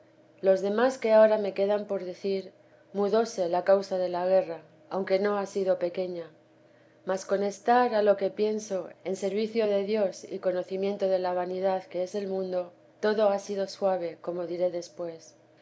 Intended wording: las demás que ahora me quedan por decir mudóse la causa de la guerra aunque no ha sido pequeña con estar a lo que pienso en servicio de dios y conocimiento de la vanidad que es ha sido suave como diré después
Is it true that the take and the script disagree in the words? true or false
true